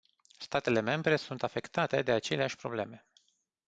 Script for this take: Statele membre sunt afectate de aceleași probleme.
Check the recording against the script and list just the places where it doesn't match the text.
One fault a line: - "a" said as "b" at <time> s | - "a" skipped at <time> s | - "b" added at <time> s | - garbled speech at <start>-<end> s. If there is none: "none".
none